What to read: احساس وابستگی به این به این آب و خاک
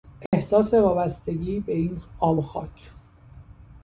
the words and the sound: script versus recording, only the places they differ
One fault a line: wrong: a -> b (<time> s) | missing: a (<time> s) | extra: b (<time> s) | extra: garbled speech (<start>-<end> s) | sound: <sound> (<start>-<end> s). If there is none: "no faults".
sound: dropout (0.3-0.3 s)
missing: به این (2.0 s)